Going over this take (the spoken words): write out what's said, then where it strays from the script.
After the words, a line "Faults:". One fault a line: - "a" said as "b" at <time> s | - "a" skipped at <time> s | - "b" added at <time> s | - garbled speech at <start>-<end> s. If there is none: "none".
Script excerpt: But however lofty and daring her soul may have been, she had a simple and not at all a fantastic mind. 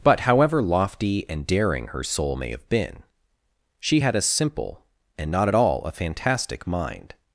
But however lofty and daring her soul may have been, she had a simple and not at all a fantastic mind.
Faults:
none